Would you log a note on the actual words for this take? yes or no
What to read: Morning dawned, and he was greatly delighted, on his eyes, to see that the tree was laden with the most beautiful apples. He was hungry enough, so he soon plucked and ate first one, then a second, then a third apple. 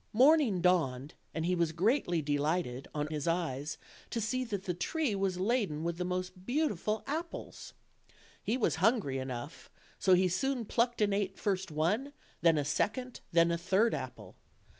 no